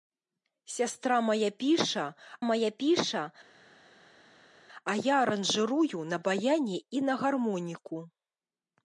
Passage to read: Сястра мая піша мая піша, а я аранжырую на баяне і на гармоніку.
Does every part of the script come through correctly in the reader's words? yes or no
yes